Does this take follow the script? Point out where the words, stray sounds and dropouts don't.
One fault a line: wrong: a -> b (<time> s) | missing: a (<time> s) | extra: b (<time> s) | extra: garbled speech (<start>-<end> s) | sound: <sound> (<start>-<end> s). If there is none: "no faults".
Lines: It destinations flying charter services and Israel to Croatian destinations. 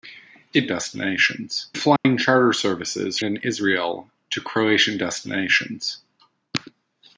sound: dropout (2.0-2.0 s)